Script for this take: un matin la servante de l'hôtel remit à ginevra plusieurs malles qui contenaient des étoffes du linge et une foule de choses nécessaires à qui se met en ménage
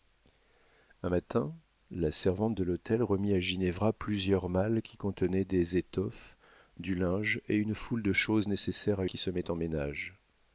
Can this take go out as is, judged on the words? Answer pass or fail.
pass